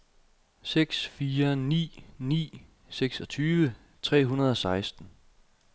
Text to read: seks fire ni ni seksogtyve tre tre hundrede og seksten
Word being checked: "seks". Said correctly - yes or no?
yes